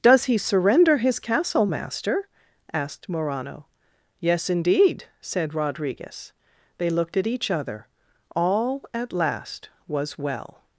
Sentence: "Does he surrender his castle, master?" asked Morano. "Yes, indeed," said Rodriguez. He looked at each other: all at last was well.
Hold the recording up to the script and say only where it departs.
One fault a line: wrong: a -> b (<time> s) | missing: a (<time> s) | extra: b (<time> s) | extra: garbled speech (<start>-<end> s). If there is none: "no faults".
wrong: He -> They (6.8 s)